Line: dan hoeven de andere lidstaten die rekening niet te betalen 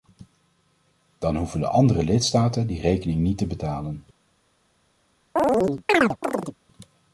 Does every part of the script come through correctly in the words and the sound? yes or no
no